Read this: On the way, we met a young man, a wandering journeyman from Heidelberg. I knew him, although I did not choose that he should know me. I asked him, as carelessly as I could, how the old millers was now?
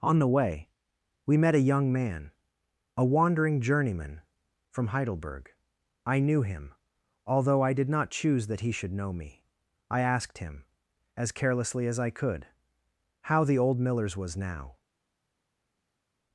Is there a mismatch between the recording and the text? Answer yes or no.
no